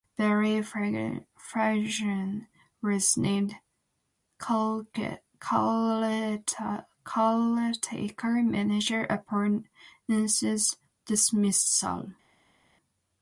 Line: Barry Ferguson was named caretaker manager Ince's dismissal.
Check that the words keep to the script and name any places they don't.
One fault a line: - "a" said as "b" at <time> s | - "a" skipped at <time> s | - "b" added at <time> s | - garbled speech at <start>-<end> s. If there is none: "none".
- "upon" added at 9.0 s